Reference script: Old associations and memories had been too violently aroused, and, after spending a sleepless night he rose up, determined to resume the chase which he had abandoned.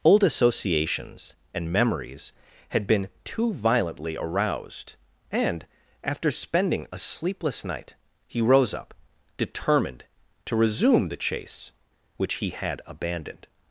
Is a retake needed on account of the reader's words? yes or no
no